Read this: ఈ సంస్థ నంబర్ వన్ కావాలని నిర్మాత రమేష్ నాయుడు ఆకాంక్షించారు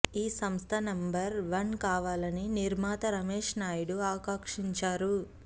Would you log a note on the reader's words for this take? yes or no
no